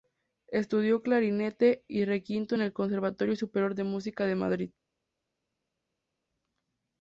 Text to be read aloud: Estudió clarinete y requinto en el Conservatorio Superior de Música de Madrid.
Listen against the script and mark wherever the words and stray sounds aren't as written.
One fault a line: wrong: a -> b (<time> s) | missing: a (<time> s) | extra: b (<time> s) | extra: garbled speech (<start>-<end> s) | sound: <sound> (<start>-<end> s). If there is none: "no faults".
no faults